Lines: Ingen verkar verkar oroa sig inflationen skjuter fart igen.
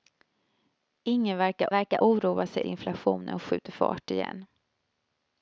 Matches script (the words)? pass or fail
pass